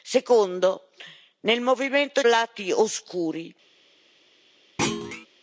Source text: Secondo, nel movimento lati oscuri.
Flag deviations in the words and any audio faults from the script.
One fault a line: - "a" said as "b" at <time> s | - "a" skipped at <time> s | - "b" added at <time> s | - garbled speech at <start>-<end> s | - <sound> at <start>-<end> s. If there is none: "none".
- thud at 4.8-5.3 s